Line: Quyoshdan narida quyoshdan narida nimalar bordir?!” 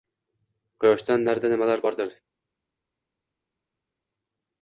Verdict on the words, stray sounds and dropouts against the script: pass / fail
fail